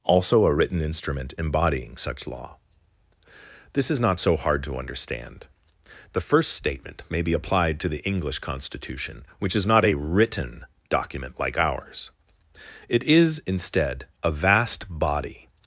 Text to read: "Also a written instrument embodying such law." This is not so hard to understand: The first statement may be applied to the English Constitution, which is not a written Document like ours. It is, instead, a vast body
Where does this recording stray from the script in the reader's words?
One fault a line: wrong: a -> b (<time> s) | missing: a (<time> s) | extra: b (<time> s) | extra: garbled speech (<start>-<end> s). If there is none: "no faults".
no faults